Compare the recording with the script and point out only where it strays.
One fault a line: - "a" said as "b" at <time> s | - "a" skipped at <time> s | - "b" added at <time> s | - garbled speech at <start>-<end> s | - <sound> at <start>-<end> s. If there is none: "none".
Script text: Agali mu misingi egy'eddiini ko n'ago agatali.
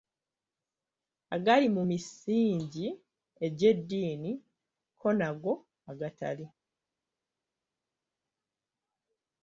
none